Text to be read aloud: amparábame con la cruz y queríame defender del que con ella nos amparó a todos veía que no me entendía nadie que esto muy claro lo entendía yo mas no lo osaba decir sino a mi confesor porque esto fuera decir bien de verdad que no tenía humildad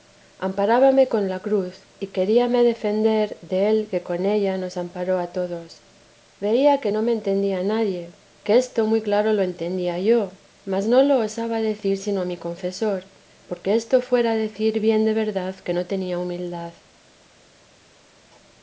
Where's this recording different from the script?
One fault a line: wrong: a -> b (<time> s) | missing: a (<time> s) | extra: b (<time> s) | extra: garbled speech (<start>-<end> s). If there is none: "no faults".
no faults